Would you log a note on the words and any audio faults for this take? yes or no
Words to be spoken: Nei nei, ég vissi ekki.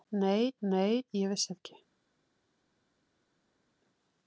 no